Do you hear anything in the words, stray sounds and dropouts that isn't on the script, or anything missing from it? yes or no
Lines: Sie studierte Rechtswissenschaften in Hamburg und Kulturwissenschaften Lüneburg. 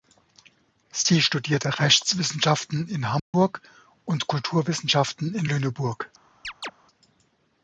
yes